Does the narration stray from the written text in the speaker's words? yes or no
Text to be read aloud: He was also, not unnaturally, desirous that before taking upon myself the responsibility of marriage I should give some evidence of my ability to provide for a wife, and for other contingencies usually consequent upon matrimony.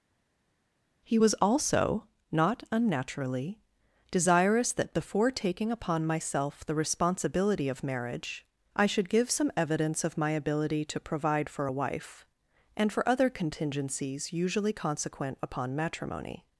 no